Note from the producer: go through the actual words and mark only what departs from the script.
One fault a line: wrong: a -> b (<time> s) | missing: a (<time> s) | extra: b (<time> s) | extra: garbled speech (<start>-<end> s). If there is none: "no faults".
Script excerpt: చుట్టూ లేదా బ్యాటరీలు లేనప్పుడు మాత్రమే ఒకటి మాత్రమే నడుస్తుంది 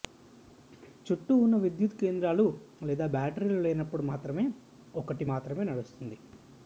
extra: ఉన్న విద్యుత్ కేంద్రాలు (1.4 s)